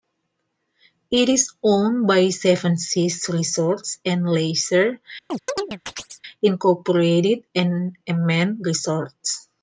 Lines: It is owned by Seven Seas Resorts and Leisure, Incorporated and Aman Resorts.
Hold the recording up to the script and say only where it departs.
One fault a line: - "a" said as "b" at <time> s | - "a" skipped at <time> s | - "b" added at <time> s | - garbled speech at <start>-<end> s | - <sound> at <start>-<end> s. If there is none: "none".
- chirp at 5.3-6.2 s